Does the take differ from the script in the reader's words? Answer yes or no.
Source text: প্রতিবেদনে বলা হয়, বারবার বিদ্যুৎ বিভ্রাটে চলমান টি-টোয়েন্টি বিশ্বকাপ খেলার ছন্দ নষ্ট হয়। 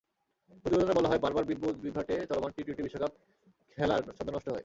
no